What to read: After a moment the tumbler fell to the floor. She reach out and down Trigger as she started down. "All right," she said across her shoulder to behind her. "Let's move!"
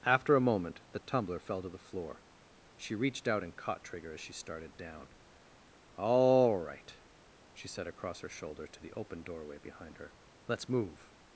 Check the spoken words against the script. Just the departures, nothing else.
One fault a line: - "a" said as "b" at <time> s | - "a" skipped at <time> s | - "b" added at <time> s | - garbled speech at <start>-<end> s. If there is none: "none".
- "reach" said as "reached" at 3.0 s
- "down" said as "caught" at 3.5 s
- "the open doorway" added at 8.8 s